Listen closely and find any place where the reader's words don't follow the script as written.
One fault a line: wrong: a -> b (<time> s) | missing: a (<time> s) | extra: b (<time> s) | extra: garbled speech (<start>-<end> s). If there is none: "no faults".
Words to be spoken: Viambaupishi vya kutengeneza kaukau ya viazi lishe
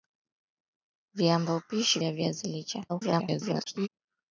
missing: vya kutengeneza kaukau (2.0 s)
extra: garbled speech (2.9-3.9 s)